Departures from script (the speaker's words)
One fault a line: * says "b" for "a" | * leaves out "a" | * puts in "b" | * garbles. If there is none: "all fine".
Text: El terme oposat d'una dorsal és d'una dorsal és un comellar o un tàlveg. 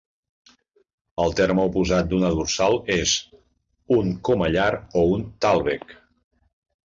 * leaves out "d'una dorsal és"